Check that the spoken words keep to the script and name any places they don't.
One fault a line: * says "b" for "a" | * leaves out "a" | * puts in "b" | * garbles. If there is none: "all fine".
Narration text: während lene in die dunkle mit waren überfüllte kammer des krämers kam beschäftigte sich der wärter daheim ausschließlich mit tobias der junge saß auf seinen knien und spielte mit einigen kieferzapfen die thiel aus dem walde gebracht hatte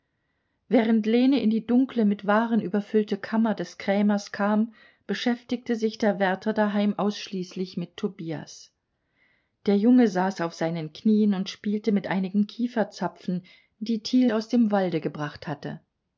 all fine